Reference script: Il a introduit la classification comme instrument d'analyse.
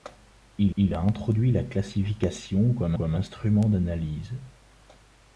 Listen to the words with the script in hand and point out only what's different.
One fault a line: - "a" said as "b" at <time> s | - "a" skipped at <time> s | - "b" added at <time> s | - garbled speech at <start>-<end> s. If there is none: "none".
- "il" added at 0.8 s
- "comme" added at 2.9 s